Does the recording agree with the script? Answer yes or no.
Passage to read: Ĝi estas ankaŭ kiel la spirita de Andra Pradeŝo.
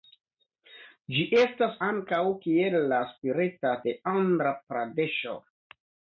yes